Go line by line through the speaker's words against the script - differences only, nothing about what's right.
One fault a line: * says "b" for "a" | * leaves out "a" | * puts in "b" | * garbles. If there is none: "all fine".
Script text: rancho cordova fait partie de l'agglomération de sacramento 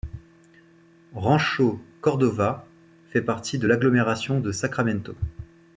all fine